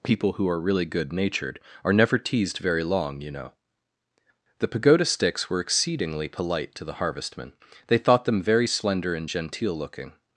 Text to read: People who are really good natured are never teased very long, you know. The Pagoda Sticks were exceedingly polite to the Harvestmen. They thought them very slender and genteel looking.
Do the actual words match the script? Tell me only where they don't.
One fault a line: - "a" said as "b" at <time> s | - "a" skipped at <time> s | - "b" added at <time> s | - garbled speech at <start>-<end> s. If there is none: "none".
none